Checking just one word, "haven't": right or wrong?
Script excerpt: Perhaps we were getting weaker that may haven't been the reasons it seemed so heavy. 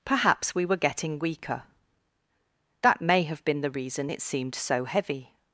wrong